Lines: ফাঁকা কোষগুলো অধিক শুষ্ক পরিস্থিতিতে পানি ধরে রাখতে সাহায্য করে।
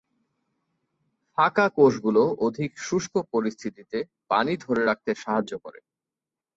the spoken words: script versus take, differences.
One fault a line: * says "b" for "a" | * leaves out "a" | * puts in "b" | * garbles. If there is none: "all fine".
all fine